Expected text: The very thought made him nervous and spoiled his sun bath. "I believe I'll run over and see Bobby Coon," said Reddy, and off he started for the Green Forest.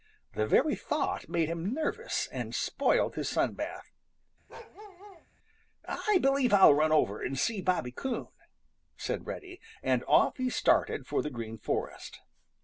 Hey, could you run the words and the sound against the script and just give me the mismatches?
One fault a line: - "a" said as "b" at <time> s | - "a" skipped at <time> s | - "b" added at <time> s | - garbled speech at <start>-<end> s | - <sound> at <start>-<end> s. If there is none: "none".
- bark at 4.5-5.3 s